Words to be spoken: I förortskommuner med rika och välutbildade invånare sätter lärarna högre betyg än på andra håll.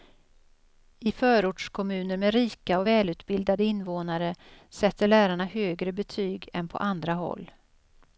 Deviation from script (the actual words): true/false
false